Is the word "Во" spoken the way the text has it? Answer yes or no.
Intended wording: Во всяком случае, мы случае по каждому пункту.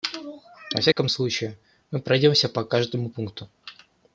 yes